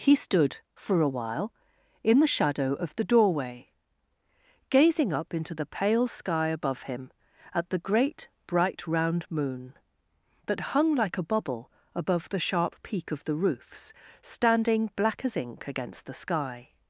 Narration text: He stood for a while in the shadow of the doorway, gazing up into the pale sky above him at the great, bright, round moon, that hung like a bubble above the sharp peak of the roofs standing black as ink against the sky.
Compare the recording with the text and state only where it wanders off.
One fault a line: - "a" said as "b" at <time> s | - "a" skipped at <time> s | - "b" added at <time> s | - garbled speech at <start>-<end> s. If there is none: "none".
none